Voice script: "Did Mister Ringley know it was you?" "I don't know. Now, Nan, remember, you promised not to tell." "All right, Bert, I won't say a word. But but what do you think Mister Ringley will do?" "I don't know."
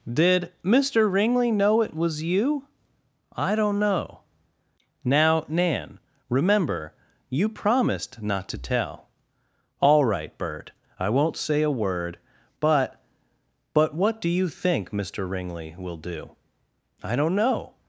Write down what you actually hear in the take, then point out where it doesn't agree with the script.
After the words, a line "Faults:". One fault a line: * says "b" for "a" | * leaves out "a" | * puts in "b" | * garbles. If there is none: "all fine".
"Did Mister Ringley know it was you?" "I don't know. Now, Nan, remember, you promised not to tell." "All right, Bert, I won't say a word. But but what do you think Mister Ringley will do?" "I don't know."
Faults:
all fine